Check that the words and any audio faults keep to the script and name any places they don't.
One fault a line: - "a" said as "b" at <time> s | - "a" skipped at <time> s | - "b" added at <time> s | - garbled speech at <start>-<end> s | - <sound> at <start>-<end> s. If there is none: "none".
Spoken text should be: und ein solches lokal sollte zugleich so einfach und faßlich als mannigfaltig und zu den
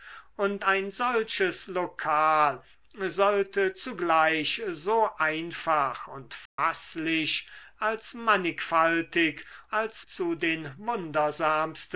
- dropout at 6.5-6.6 s
- "und" said as "als" at 9.7 s